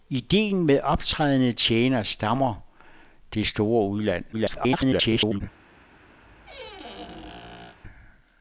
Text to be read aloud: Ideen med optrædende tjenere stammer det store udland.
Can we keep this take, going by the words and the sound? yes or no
no